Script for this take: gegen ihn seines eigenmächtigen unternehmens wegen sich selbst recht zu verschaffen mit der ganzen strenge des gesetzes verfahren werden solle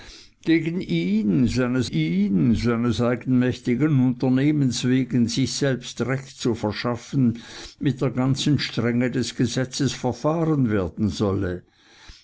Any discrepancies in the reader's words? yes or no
yes